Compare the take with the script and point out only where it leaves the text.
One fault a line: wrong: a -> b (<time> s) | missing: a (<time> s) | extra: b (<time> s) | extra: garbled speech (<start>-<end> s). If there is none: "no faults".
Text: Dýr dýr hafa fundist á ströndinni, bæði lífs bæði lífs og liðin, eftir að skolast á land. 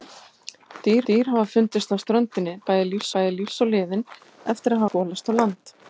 no faults